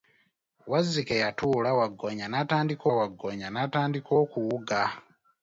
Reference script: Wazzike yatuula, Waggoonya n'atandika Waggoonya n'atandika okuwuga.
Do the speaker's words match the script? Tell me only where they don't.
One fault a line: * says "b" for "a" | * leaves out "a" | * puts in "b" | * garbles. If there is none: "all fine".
all fine